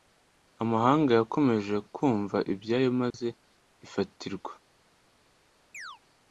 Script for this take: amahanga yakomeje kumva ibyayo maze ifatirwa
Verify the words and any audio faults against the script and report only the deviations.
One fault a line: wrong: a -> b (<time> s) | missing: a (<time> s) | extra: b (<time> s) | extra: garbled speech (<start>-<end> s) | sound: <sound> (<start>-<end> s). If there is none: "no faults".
sound: dropout (3.1-3.1 s)
sound: chirp (5.7-6.0 s)